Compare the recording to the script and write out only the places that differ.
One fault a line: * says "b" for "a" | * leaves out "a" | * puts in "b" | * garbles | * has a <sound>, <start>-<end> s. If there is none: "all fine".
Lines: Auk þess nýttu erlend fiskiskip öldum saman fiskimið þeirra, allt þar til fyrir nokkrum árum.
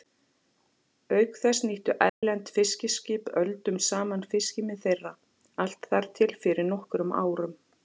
* has a dropout, 2.1-2.2 s